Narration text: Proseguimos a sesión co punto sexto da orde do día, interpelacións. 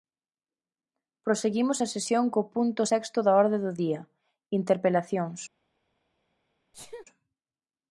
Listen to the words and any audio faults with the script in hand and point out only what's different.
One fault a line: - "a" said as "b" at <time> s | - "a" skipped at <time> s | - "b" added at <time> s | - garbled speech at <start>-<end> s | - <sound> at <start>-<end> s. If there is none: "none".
- sneeze at 6.7-7.1 s